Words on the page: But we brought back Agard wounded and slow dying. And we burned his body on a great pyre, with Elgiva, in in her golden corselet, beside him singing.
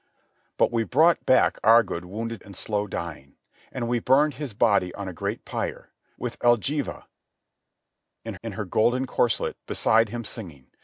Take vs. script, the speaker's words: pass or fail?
pass